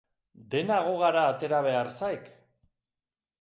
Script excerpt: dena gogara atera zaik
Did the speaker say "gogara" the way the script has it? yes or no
yes